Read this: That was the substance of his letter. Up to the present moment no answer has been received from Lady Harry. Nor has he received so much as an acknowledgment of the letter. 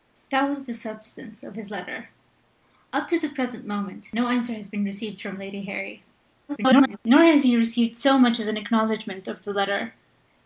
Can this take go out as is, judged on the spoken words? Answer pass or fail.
fail